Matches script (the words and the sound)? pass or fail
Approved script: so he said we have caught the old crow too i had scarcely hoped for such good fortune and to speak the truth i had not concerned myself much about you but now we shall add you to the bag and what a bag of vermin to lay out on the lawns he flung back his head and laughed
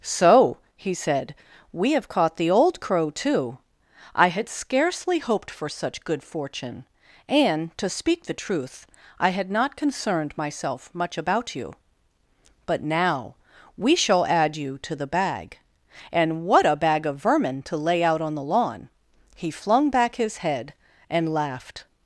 fail